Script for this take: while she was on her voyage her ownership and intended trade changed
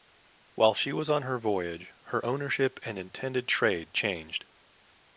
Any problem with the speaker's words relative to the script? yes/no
no